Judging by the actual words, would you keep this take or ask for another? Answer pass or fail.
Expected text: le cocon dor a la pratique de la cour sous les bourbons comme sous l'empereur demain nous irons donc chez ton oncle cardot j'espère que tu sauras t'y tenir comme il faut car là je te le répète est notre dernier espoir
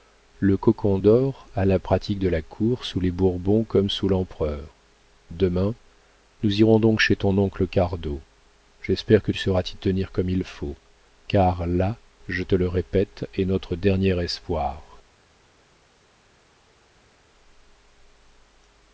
fail